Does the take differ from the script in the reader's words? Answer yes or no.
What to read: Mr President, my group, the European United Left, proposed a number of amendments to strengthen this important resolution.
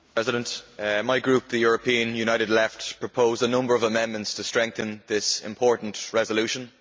no